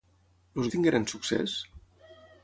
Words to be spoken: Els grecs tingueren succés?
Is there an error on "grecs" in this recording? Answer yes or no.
yes